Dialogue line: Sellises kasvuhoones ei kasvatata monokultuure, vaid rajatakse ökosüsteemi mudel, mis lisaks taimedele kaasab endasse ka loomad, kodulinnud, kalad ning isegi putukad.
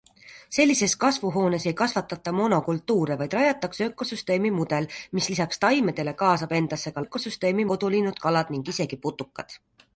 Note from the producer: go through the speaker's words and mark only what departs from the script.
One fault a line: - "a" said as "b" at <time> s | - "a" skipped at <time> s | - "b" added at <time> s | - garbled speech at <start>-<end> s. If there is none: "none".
- "loomad" said as "ökosüsteemi" at 7.0 s